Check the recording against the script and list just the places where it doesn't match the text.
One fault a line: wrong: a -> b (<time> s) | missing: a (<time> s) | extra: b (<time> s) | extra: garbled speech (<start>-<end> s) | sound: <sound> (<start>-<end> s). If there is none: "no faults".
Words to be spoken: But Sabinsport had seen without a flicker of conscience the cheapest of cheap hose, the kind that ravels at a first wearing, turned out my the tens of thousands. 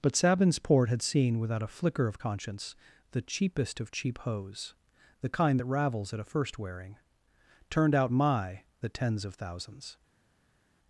no faults